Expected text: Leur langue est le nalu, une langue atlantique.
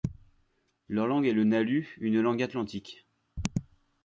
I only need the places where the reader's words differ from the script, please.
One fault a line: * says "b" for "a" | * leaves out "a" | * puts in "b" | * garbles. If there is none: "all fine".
all fine